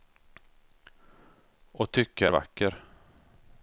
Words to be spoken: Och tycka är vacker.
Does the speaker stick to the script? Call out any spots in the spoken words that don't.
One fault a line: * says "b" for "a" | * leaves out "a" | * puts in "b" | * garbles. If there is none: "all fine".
all fine